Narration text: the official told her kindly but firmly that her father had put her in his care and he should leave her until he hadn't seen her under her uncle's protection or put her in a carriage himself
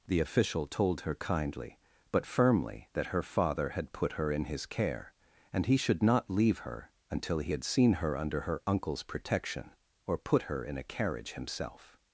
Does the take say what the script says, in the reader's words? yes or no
no